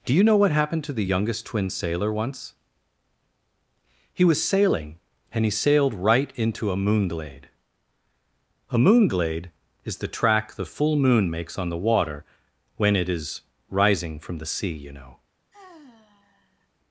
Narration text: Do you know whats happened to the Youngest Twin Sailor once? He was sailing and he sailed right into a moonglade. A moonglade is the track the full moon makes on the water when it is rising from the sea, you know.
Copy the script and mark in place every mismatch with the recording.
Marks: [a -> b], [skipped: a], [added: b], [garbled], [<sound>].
Do you know [whats -> what] happened to the Youngest Twin Sailor once? He was sailing and he sailed right into a moonglade. A moonglade is the track the full moon makes on the water when it is rising from the sea, you know. [sigh]